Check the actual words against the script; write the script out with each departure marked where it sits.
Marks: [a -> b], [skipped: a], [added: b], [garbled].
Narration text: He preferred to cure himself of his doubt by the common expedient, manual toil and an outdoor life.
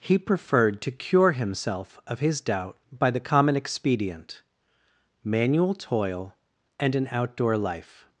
He preferred to cure himself of his doubt by the common expedient, manual toil and an outdoor life.